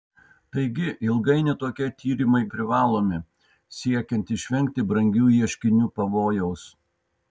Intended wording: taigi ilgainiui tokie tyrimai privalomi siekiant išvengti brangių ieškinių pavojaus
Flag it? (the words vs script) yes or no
no